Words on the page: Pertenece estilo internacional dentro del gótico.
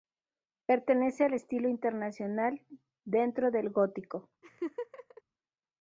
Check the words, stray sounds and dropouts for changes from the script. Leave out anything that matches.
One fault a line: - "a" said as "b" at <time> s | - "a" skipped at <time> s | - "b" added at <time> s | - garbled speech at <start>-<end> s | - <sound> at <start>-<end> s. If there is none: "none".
- "al" added at 1.2 s
- laugh at 4.4-5.2 s